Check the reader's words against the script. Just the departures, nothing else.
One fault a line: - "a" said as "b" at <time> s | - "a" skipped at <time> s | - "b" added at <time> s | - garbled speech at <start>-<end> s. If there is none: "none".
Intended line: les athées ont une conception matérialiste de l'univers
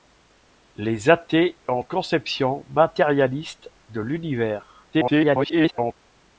- "une" skipped at 1.9 s
- garbled speech at 4.9-5.9 s